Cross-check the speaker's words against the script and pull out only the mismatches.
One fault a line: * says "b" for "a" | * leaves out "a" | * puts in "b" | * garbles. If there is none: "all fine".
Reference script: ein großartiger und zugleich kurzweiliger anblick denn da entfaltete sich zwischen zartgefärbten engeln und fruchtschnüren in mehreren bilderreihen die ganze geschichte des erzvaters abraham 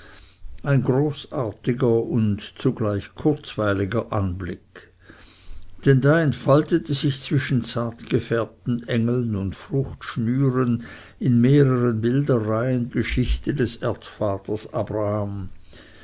* leaves out "die ganze"